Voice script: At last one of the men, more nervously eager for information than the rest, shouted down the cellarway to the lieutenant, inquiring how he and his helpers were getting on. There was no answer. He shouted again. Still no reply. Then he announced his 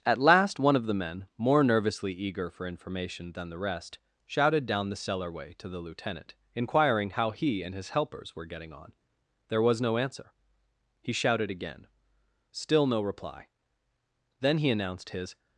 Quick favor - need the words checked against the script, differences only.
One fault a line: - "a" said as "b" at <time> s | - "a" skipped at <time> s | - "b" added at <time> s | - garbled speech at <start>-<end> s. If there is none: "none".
none